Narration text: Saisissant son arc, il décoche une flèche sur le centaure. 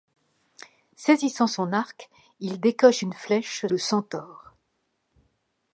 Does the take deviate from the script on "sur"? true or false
true